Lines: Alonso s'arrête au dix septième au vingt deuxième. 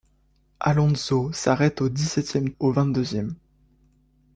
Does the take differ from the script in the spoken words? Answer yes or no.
no